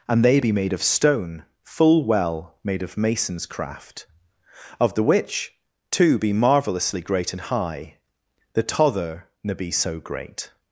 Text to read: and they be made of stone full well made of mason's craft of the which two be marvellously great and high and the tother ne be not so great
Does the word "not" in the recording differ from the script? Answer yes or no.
yes